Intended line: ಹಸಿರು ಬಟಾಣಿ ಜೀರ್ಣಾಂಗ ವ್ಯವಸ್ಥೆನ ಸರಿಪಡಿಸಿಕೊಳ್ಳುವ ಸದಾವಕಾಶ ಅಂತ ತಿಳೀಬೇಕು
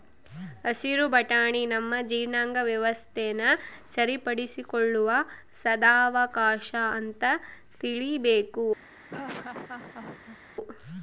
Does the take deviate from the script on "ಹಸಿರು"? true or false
false